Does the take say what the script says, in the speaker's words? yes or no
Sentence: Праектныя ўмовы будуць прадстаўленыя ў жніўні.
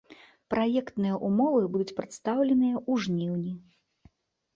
yes